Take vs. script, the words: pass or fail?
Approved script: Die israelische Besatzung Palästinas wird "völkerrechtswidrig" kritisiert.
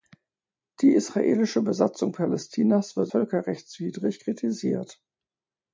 pass